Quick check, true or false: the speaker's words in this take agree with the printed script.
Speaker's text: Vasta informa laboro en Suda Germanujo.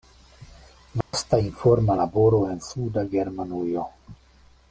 true